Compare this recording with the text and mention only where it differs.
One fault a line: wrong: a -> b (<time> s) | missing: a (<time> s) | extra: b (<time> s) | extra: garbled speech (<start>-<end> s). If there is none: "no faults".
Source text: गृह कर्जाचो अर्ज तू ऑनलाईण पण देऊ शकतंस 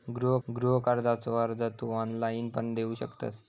extra: गृह (0.5 s)